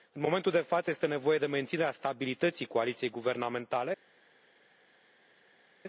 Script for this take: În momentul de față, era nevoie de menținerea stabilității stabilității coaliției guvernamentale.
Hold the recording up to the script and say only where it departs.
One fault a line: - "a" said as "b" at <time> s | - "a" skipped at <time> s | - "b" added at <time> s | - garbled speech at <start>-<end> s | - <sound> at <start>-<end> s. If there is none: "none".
- "era" said as "este" at 0.9 s
- "stabilității" skipped at 2.6 s